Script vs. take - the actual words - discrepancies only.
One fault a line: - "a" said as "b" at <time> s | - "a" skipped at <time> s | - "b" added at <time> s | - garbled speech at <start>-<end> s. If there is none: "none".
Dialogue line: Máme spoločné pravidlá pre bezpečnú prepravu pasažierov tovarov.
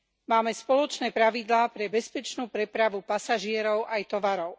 - "aj" added at 3.9 s